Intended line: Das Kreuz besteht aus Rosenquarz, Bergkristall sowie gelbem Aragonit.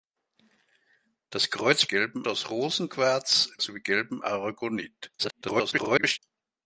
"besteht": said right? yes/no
no